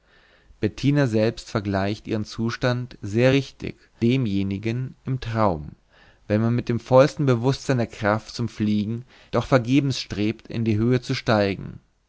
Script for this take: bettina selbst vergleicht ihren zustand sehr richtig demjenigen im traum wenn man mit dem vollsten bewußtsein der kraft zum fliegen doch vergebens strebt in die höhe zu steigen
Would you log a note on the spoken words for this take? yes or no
no